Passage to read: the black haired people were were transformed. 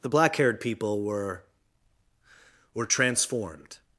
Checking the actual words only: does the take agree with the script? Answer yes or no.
yes